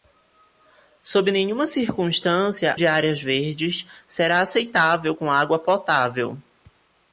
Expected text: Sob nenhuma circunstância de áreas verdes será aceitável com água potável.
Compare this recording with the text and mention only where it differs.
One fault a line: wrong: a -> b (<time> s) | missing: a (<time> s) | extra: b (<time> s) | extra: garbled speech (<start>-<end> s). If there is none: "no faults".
no faults